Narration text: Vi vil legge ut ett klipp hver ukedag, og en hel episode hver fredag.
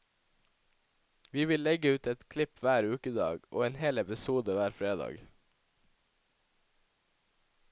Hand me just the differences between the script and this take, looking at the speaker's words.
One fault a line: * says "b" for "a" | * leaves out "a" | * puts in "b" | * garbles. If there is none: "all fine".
all fine